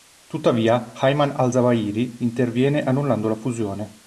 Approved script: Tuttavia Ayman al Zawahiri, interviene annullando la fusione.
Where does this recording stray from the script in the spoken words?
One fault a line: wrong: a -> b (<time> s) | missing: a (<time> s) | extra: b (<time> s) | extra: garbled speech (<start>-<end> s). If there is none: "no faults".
no faults